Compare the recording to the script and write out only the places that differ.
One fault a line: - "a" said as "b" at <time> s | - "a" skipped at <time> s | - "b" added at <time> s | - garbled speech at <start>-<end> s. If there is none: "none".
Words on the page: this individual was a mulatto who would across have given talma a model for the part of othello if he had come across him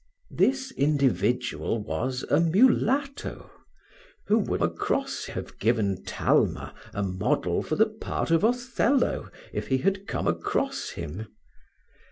none